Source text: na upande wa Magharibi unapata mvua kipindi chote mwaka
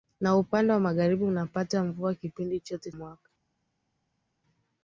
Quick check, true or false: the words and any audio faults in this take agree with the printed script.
true